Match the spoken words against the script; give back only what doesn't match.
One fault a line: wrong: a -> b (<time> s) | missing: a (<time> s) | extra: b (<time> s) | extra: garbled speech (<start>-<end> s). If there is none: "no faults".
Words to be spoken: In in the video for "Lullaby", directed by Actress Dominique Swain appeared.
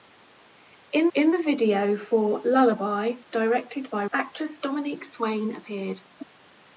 no faults